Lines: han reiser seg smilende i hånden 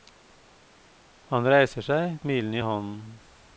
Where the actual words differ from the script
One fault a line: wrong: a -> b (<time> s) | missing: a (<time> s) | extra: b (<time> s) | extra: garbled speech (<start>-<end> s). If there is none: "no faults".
no faults